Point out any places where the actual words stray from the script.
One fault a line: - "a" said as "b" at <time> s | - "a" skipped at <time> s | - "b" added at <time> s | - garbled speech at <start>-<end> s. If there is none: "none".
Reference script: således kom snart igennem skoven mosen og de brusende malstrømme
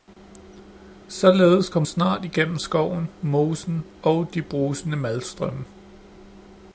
none